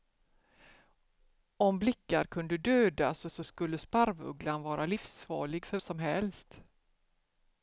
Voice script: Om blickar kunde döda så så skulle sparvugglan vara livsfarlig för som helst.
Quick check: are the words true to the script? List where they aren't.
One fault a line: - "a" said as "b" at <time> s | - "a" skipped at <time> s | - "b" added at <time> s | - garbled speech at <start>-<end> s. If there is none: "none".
none